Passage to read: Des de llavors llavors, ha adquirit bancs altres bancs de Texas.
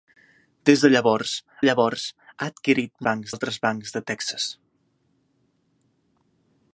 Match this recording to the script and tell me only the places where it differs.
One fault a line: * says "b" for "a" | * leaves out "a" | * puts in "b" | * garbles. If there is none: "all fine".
all fine